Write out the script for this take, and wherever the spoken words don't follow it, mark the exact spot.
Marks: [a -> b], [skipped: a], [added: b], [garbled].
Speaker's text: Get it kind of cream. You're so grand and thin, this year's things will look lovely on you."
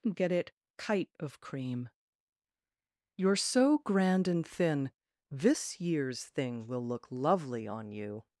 Get it [kind -> kite] of cream. You're so grand and thin, this year's [things -> thing] will look lovely on you."